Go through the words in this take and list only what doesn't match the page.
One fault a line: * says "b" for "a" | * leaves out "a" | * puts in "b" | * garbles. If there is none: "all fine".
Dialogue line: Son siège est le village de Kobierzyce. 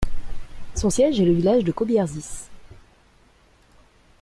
all fine